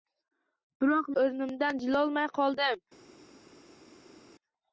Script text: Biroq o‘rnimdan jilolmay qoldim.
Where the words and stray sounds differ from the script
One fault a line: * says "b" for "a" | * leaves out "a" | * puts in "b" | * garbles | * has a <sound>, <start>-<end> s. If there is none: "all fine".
all fine